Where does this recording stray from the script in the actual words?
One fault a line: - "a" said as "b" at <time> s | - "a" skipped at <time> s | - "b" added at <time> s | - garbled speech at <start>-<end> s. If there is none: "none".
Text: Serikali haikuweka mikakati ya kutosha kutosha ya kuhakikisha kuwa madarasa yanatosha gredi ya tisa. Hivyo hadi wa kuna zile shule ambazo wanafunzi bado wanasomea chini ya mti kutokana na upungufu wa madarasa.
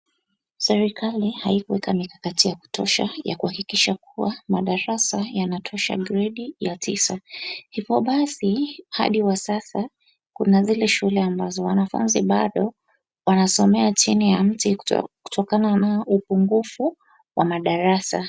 - "kutosha" skipped at 3.1 s
- "basi" added at 8.0 s
- "sasa" added at 9.4 s